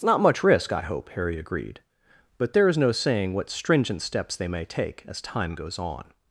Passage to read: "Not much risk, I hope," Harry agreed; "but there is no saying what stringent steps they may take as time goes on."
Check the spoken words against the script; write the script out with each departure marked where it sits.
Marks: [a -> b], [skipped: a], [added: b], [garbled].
"Not much risk, I hope," Harry agreed; "but there is no saying what stringent steps they may take as time goes on."